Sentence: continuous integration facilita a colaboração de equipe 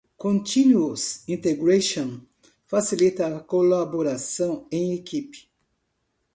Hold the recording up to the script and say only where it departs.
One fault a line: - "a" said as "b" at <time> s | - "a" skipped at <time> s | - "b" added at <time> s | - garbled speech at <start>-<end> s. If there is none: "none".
- "de" said as "em" at 4.7 s